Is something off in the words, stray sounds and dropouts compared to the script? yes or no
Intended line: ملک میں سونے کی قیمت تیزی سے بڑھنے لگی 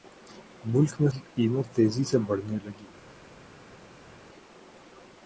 yes